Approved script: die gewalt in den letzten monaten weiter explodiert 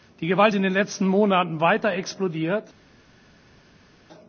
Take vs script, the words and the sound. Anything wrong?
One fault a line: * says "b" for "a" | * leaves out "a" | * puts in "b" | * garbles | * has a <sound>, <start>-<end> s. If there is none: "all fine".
all fine